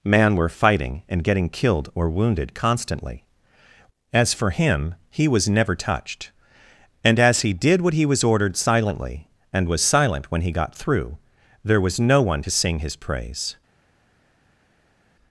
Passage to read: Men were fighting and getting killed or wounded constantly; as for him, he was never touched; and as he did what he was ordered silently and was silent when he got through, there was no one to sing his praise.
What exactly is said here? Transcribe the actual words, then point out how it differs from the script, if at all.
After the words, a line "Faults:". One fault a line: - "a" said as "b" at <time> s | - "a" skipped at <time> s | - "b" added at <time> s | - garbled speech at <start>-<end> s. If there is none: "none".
Man were fighting and getting killed or wounded constantly; as for him, he was never touched; and as he did what he was ordered silently and was silent when he got through, there was no one to sing his praise.
Faults:
- "Men" said as "Man" at 0.0 s